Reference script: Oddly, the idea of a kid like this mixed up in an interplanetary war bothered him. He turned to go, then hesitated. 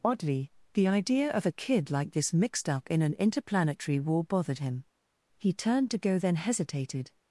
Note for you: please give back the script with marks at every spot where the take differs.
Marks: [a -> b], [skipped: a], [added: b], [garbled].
Oddly, the idea of a kid like this mixed up in an interplanetary war bothered him. He turned to go, then hesitated.